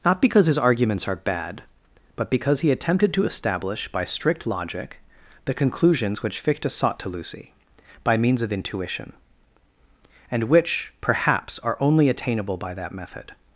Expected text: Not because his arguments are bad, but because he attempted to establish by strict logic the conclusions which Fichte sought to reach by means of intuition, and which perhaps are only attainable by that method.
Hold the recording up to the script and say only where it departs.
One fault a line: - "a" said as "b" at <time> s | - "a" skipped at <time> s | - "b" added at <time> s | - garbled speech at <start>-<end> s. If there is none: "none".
- "reach" said as "lucy" at 7.1 s